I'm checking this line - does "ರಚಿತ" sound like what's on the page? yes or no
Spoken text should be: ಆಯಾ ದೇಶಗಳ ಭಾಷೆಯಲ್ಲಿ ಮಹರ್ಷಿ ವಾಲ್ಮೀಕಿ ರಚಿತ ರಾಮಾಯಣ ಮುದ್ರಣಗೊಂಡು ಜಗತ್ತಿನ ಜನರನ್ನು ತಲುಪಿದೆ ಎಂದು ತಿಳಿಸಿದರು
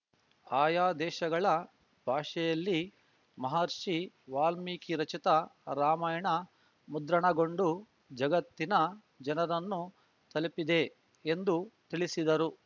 yes